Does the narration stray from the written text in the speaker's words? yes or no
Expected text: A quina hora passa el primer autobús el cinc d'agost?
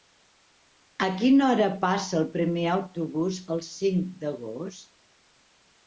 no